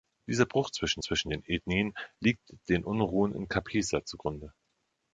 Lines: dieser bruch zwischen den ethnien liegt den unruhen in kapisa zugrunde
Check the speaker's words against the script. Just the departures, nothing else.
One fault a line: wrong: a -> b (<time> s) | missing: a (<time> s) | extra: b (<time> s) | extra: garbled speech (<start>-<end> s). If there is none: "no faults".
extra: zwischen (1.0 s)